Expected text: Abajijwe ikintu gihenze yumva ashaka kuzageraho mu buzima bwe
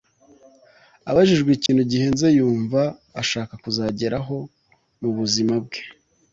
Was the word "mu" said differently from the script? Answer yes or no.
no